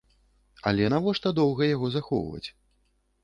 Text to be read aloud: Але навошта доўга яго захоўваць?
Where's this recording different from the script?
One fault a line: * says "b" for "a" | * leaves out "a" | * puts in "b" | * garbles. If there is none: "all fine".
all fine